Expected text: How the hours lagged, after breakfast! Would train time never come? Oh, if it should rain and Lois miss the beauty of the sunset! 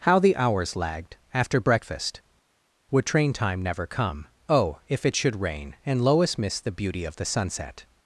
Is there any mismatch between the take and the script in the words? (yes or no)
no